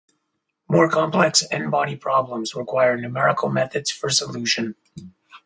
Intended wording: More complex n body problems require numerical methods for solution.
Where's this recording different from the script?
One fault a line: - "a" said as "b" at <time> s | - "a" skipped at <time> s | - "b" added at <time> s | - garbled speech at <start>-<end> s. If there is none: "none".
none